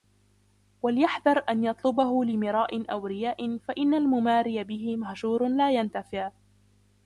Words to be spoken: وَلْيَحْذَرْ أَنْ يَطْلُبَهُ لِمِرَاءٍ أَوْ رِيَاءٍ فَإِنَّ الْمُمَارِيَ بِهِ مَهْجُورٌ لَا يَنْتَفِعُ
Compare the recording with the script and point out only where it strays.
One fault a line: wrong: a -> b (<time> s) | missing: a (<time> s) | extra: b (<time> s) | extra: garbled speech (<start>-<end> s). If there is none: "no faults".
no faults